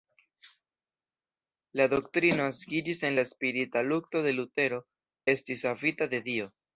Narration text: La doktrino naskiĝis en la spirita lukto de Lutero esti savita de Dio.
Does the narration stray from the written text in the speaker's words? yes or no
no